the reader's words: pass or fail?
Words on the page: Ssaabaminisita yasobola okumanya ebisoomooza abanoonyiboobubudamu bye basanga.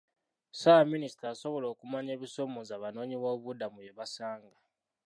pass